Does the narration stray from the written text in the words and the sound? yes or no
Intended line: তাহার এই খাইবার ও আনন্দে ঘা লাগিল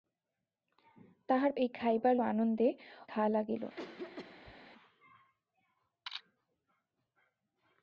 yes